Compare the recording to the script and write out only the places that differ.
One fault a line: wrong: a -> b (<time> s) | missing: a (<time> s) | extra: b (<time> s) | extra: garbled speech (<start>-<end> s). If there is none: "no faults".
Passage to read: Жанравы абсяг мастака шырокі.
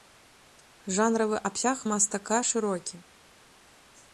no faults